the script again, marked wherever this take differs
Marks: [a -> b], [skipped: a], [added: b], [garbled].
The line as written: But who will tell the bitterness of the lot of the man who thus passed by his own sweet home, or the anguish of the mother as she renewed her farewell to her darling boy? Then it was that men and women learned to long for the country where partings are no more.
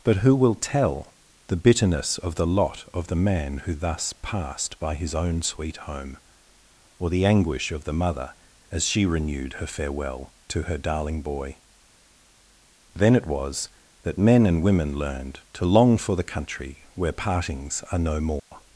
But who will tell the bitterness of the lot of the man who thus passed by his own sweet home, or the anguish of the mother as she renewed her farewell to her darling boy? Then it was that men and women learned to long for the country where partings are no more.